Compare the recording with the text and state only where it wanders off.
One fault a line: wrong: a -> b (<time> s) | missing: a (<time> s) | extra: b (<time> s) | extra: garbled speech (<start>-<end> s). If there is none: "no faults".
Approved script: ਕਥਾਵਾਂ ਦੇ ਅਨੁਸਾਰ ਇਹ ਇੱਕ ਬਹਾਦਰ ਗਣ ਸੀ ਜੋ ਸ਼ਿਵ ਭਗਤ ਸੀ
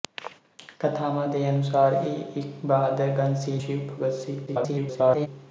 missing: ਜੋ (3.6 s)
extra: garbled speech (4.5-5.3 s)